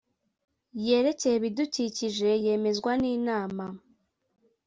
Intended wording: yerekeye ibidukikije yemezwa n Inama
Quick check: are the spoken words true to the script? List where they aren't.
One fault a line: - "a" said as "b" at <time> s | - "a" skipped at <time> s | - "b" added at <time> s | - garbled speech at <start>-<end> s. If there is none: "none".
none